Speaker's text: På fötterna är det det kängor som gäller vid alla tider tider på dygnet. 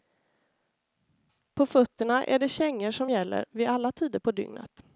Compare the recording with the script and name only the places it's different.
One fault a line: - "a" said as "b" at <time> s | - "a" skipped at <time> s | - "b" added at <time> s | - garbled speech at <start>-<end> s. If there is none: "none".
- "det" skipped at 2.5 s
- "tider" skipped at 4.2 s